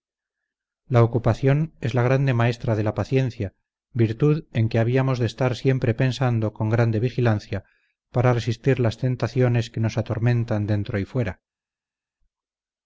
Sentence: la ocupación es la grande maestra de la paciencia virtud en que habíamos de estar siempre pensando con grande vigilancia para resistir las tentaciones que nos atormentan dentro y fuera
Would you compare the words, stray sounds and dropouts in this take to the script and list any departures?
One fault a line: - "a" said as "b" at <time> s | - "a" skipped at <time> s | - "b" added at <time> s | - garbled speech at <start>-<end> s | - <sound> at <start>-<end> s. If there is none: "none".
none